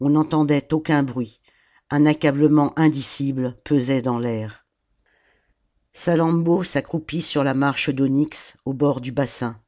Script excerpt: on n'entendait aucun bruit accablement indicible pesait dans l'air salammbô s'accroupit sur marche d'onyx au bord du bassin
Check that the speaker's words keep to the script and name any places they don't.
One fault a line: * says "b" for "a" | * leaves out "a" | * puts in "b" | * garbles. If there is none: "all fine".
* puts in "un"
* puts in "la"